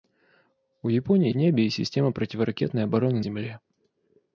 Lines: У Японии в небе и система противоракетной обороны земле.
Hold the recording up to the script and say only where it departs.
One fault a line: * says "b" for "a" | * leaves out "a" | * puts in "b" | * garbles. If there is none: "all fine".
all fine